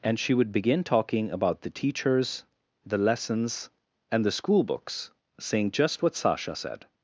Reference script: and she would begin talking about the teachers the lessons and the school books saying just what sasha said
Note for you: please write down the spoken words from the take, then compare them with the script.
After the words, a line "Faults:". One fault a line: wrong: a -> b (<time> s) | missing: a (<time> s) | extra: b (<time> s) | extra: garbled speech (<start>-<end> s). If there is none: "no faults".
and she would begin talking about the teachers the lessons and the school books saying just what sasha said
Faults:
no faults